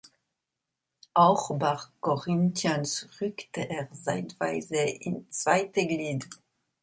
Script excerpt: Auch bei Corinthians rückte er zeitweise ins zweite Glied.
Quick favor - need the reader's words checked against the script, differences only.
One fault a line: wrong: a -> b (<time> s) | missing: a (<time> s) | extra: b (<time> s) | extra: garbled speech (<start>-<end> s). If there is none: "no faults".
no faults